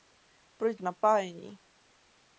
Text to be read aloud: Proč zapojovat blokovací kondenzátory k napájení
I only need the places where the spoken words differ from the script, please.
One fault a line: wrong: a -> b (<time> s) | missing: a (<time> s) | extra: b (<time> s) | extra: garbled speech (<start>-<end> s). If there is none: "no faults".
missing: zapojovat blokovací kondenzátory (0.8 s)